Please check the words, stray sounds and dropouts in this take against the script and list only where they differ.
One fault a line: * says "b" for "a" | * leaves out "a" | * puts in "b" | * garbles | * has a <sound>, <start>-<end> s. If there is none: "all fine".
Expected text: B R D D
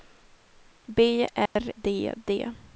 * has a dropout, 1.5-1.6 s